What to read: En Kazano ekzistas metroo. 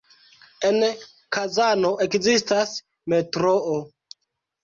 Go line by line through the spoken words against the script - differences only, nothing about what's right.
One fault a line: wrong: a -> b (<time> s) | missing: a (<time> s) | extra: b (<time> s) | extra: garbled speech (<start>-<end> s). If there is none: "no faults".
no faults